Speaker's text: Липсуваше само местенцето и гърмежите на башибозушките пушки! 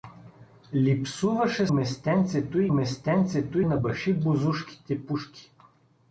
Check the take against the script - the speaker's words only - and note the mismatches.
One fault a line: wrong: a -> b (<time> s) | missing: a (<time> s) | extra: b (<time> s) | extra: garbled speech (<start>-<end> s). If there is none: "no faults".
missing: само (1.7 s)
wrong: гърмежите -> местенцето (2.7 s)